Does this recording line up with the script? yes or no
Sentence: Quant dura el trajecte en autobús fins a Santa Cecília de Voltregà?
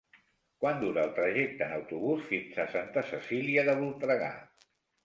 yes